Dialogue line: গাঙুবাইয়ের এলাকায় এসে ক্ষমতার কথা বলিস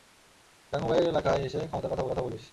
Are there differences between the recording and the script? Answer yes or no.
yes